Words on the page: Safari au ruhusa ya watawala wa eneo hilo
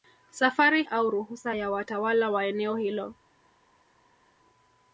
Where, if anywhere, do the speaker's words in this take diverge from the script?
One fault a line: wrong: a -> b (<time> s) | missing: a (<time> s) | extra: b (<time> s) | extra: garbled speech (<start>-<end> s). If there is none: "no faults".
no faults